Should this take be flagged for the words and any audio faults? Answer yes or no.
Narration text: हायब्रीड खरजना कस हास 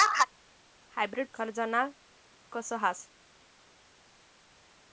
no